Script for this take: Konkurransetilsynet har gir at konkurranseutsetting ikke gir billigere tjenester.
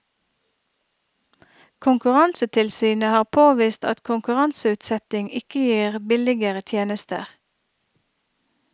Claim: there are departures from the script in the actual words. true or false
true